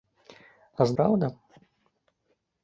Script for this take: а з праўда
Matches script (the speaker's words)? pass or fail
pass